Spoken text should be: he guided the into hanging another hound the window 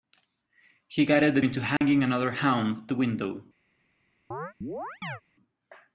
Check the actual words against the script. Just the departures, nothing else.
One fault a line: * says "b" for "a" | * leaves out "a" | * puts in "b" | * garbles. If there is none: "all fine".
all fine